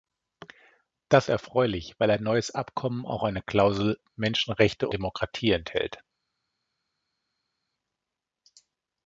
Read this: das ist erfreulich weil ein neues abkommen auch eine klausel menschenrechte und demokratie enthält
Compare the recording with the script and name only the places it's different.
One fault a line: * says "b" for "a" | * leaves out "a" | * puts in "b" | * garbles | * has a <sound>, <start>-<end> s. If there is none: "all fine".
* leaves out "ist"
* leaves out "und"